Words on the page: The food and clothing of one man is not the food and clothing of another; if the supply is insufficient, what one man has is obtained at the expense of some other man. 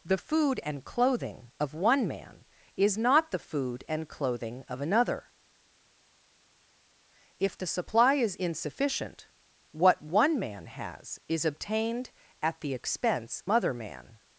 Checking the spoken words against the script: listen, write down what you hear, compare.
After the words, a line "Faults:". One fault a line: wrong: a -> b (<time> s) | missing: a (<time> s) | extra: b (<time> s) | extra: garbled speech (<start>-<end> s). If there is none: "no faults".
The food and clothing of one man is not the food and clothing of another; if the supply is insufficient, what one man has is obtained at the expense other man.
Faults:
missing: of some (13.4 s)